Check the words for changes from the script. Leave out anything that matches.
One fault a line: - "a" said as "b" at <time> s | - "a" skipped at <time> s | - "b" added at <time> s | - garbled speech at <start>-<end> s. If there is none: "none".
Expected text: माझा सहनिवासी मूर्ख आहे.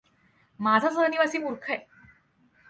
none